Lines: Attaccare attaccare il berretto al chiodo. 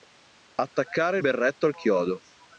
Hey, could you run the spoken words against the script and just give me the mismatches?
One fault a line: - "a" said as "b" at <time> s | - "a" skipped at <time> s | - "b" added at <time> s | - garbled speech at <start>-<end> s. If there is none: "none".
- "attaccare" skipped at 1.2 s